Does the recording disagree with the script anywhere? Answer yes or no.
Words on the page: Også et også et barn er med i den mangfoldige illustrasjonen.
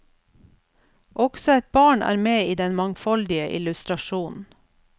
yes